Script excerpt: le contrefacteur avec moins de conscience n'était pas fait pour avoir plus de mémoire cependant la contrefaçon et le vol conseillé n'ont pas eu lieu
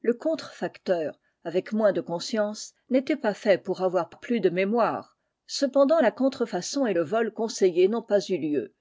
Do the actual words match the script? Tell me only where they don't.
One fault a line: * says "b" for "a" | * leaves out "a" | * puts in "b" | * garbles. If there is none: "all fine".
all fine